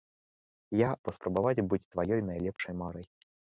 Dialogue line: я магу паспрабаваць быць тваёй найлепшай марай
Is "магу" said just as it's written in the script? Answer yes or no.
no